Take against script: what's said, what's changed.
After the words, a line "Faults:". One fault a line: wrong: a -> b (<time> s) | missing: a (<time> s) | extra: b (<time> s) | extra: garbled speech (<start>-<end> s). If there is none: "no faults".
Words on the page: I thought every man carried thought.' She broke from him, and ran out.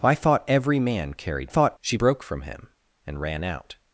I thought every man carried thought.' She broke from him, and ran out.
Faults:
no faults